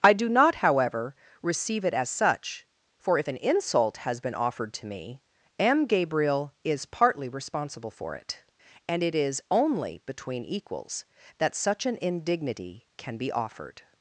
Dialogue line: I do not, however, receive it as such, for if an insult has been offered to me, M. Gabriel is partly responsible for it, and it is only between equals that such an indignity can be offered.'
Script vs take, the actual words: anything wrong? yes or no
no